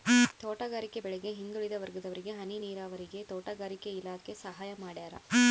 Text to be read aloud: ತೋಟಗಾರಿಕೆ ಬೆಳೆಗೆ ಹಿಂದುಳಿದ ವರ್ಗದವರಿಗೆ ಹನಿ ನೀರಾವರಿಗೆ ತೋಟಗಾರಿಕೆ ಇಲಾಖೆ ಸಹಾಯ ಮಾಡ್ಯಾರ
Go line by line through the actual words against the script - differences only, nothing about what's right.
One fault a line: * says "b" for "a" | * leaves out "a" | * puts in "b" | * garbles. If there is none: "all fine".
all fine